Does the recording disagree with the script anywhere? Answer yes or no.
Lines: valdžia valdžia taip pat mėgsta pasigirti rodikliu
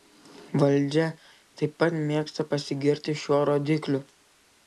yes